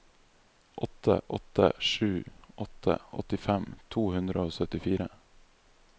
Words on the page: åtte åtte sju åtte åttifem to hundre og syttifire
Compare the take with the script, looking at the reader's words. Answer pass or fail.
pass